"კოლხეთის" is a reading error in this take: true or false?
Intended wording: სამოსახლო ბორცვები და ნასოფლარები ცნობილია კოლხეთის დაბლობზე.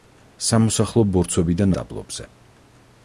true